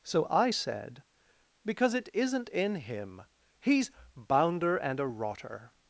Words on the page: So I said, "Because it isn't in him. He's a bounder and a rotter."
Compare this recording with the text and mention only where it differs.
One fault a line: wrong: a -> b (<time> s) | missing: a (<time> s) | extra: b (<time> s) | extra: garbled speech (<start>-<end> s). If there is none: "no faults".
missing: a (3.9 s)